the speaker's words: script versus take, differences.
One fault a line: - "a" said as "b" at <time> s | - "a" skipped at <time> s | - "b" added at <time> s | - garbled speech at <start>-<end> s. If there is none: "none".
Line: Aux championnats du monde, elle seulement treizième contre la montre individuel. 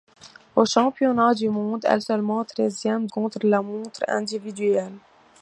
none